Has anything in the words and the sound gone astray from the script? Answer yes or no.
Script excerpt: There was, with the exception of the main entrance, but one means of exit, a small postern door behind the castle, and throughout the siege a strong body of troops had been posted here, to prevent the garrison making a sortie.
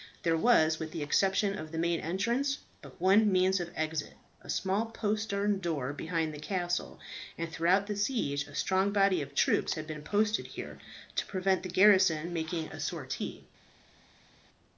no